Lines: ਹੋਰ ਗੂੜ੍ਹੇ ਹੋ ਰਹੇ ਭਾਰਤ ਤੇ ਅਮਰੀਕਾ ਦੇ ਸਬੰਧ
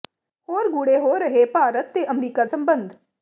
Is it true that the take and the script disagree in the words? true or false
true